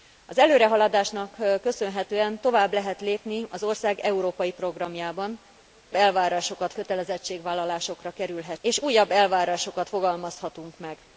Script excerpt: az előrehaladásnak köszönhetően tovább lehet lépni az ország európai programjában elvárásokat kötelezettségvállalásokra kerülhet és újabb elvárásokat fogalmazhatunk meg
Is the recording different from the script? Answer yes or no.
no